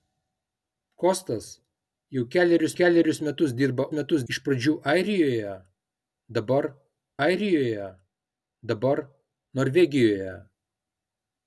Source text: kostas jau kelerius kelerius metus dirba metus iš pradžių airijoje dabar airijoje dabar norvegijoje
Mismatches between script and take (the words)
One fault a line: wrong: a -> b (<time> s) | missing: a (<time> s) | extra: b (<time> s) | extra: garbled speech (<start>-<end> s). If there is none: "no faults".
no faults